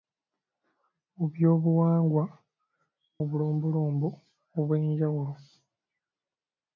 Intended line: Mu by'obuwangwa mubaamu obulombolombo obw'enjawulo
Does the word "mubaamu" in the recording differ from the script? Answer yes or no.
yes